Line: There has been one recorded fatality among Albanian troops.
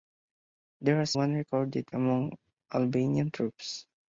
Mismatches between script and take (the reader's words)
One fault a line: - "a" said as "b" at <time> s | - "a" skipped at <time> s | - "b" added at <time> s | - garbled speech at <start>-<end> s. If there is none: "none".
- "been" skipped at 1.1 s
- "fatality" skipped at 1.9 s